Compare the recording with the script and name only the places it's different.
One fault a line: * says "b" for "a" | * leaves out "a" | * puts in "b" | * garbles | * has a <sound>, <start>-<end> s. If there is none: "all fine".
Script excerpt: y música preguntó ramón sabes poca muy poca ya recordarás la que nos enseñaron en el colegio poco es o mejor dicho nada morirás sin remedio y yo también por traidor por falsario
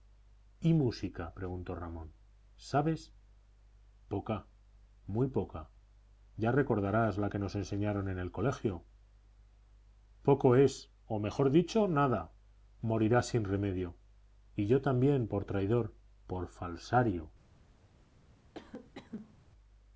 * has a cough, 18.5-19.4 s